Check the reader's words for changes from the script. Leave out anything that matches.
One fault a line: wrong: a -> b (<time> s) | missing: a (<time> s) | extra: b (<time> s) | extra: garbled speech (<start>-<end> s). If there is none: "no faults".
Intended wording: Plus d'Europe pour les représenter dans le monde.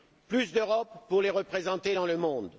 no faults